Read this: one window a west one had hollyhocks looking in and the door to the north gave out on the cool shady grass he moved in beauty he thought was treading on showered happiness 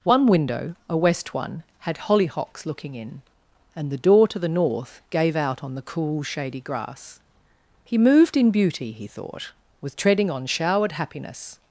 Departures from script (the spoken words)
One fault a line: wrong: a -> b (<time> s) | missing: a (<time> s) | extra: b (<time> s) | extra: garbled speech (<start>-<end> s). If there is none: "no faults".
no faults